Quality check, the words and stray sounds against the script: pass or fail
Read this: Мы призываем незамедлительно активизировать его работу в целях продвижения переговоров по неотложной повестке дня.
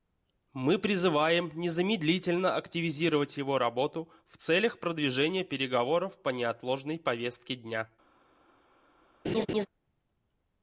fail